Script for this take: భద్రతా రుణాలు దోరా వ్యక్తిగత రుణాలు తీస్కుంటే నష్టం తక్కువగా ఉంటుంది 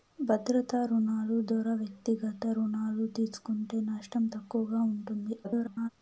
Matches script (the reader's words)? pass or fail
fail